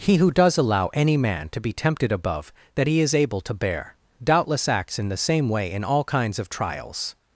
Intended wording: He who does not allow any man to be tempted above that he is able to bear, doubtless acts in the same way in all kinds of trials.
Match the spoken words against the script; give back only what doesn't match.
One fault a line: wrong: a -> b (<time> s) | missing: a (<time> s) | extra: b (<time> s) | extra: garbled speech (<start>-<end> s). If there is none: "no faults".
missing: not (0.6 s)